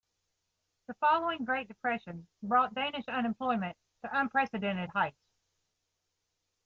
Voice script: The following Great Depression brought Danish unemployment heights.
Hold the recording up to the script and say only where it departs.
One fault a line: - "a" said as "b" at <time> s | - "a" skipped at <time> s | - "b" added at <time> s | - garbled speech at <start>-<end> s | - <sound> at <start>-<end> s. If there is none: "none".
- "to unprecedented" added at 4.0 s